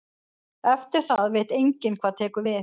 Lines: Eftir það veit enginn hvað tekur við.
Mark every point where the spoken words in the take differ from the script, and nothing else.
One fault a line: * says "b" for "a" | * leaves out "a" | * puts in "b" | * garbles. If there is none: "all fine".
all fine